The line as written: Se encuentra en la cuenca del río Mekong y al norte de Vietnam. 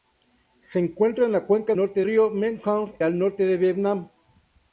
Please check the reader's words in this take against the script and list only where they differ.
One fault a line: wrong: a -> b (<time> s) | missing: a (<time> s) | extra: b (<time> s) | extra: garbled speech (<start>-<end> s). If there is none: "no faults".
wrong: del -> norte (1.7 s)
missing: y (2.9 s)